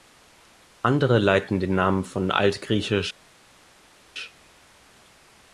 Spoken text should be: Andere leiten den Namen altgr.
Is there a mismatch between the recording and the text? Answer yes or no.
yes